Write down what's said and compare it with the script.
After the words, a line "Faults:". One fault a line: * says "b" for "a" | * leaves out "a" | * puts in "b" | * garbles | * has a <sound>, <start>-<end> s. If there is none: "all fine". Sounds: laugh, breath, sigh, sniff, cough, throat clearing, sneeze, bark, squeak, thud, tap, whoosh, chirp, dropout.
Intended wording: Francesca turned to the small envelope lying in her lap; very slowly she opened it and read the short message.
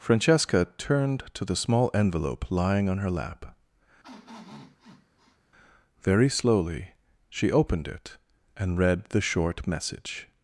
Francesca turned to the small envelope lying on her lap; very slowly she opened it and read the short message.
Faults:
* says "on" for "in"
* has a sniff, 4.0-5.4 s